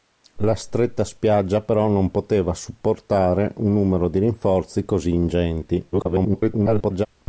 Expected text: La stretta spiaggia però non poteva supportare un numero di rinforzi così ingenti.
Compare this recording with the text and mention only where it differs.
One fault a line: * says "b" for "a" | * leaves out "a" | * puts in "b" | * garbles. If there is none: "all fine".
* garbles